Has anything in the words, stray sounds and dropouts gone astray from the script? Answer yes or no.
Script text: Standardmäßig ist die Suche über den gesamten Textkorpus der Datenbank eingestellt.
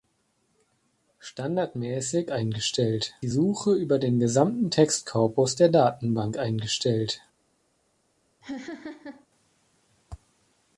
yes